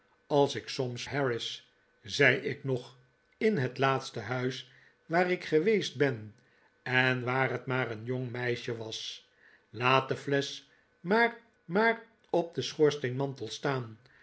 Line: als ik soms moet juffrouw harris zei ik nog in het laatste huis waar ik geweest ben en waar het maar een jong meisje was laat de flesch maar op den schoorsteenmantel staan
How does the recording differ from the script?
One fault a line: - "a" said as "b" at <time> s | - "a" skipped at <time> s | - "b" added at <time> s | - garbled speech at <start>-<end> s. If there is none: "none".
- "moet juffrouw" skipped at 1.1 s
- "maar" added at 11.6 s